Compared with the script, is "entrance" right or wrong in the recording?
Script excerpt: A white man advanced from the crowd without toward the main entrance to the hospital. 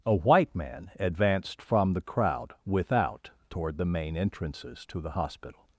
wrong